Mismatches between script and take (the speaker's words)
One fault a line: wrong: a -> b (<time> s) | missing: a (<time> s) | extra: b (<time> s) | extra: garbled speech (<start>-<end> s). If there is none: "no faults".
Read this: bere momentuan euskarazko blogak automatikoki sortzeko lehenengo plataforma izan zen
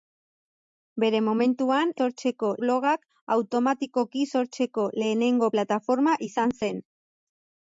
wrong: euskarazko -> sortzeko (2.0 s)